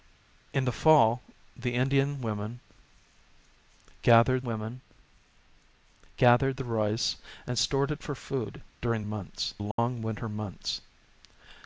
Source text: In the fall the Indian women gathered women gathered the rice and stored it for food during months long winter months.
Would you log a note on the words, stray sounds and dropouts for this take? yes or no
yes